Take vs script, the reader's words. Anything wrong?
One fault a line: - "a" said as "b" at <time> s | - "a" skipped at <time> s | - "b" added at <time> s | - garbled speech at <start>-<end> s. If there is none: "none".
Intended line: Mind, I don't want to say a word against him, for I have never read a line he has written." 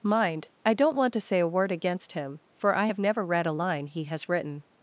none